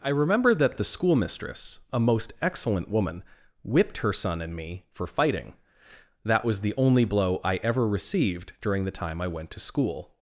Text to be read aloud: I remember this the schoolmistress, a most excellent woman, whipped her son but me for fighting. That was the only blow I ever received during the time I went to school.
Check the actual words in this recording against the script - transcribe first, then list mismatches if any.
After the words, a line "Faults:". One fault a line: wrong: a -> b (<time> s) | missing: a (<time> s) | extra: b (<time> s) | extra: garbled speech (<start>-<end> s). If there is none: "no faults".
I remember that the schoolmistress, a most excellent woman, whipped her son and me for fighting. That was the only blow I ever received during the time I went to school.
Faults:
wrong: this -> that (0.6 s)
wrong: but -> and (4.4 s)